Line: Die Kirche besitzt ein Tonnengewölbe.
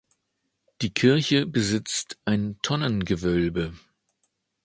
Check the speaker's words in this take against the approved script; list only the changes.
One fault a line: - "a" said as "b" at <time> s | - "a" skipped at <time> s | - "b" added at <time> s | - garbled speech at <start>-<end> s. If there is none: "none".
none